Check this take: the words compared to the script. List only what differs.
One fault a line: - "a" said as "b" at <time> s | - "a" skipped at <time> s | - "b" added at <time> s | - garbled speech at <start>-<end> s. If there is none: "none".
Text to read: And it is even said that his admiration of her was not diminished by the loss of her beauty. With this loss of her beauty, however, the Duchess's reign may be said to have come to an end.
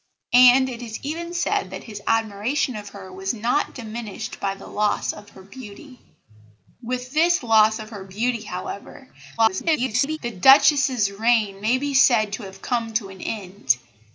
- garbled speech at 9.4-10.2 s